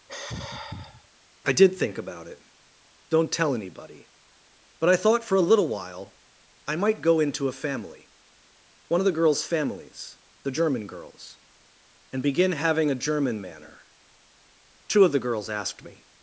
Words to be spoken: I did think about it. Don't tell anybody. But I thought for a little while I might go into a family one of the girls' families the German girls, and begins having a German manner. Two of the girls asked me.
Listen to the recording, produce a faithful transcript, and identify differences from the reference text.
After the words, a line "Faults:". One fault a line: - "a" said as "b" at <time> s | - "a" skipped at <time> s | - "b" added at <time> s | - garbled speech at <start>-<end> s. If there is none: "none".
I did think about it. Don't tell anybody. But I thought for a little while I might go into a family one of the girls' families the German girls, and begin having a German manner. Two of the girls asked me.
Faults:
- "begins" said as "begin" at 12.2 s